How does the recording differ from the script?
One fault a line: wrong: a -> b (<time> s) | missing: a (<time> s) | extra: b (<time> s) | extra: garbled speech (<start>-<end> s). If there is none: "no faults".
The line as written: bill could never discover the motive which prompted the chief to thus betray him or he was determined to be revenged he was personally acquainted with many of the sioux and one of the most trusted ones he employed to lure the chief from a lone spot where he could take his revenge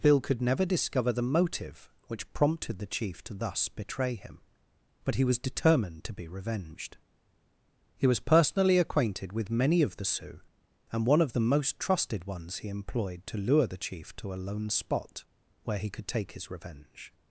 wrong: or -> but (5.0 s)
wrong: from -> to (14.2 s)